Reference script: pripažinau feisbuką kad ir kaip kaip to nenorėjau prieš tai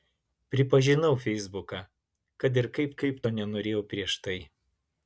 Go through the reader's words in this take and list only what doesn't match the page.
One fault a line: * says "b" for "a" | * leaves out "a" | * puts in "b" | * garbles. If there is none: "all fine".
all fine